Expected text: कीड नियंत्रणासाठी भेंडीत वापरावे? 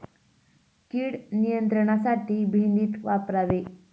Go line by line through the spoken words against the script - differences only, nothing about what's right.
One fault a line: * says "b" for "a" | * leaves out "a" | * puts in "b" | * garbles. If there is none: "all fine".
all fine